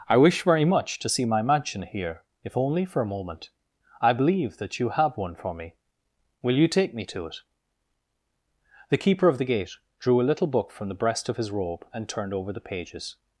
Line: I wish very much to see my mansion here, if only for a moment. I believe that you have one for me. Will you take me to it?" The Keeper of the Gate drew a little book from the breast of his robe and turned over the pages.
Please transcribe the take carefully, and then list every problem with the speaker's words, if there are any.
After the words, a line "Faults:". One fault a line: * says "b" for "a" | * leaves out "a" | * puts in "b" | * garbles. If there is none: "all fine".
I wish very much to see my mansion here, if only for a moment. I believe that you have one for me. Will you take me to it?" The Keeper of the Gate drew a little book from the breast of his robe and turned over the pages.
Faults:
all fine